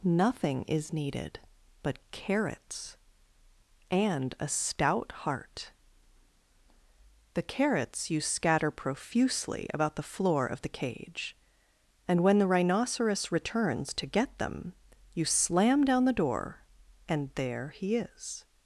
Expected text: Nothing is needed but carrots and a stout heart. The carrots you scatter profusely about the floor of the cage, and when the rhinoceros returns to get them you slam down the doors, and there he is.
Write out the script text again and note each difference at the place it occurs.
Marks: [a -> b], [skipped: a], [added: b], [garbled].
Nothing is needed but carrots and a stout heart. The carrots you scatter profusely about the floor of the cage, and when the rhinoceros returns to get them you slam down the [doors, -> door] and there he is.